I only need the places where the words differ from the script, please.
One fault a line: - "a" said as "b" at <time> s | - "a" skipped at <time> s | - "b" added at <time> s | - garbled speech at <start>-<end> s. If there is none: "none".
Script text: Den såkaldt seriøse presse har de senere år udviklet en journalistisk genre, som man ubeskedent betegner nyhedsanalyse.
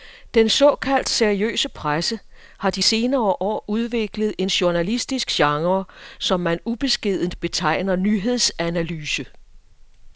none